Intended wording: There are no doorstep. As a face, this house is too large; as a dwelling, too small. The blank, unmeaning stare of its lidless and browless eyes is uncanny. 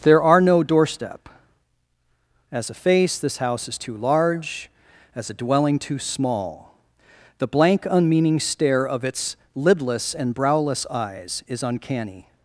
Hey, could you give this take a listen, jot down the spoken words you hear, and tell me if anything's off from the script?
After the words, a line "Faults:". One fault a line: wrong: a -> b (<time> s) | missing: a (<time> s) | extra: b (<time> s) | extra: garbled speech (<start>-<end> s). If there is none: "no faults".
There are no doorstep. As a face, this house is too large; as a dwelling, too small. The blank, unmeaning stare of its lidless and browless eyes is uncanny.
Faults:
no faults